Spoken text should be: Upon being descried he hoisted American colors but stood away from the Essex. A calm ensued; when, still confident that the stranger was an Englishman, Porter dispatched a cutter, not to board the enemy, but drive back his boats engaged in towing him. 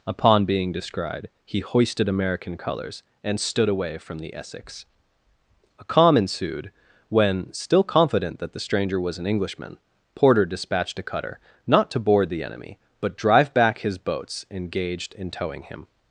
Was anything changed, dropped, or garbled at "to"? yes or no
no